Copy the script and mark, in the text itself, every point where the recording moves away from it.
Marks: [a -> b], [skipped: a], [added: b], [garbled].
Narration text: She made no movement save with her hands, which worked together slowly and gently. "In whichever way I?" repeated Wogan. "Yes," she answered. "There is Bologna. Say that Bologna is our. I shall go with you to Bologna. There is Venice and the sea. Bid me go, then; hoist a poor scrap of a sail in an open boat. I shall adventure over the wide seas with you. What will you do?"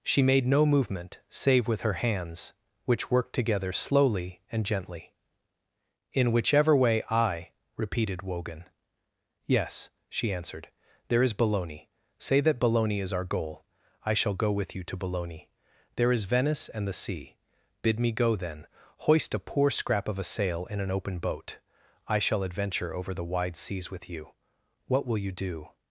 She made no movement save with her hands, which worked together slowly and gently. "In whichever way I?" repeated Wogan. "Yes," she answered. "There is Bologna. Say that Bologna is our. [added: goal] I shall go with you to Bologna. There is Venice and the sea. Bid me go, then; hoist a poor scrap of a sail in an open boat. I shall adventure over the wide seas with you. What will you do?"